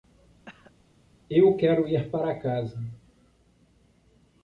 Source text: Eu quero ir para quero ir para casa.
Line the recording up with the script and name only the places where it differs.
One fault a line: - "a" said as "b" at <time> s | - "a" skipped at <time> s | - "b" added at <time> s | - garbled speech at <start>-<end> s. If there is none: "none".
- "quero ir para" skipped at 2.4 s